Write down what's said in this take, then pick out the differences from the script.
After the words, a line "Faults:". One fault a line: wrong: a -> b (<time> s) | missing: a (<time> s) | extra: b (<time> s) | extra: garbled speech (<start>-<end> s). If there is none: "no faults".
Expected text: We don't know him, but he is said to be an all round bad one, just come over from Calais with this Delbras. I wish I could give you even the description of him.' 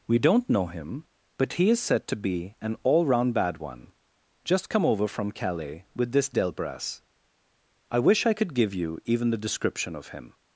We don't know him, but he is said to be an all round bad one, just come over from Calais with this Delbras. I wish I could give you even the description of him.'
Faults:
no faults